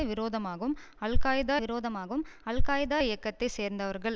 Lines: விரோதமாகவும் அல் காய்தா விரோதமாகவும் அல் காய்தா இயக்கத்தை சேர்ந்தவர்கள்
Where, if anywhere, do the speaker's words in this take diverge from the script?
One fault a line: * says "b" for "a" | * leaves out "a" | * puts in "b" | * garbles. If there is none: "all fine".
all fine